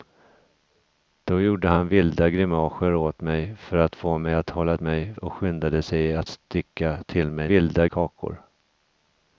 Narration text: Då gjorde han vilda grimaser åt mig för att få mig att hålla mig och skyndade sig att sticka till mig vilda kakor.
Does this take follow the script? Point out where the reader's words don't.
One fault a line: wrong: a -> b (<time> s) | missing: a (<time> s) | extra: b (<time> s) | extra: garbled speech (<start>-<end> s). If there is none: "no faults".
no faults